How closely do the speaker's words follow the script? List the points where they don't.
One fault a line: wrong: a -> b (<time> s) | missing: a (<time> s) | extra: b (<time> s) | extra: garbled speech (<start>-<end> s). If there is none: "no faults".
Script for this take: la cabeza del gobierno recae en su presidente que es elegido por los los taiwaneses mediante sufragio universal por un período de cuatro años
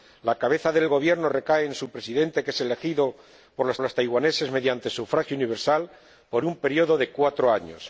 no faults